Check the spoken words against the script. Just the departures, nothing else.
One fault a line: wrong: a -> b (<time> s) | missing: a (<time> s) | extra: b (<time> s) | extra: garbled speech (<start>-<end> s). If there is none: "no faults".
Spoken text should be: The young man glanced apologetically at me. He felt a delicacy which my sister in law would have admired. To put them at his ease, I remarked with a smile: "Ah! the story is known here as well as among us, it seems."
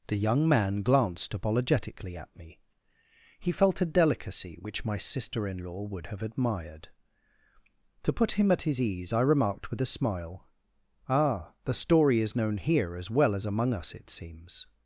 wrong: them -> him (8.3 s)